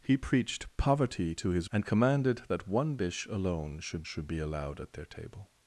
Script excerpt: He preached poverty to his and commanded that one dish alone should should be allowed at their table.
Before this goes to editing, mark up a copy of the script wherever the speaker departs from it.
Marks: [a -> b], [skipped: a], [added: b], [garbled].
He preached poverty to his and commanded that one dish alone should should be allowed at their table.